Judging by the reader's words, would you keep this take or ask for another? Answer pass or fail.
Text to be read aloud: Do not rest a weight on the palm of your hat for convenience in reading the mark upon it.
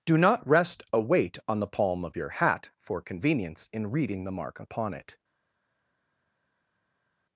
pass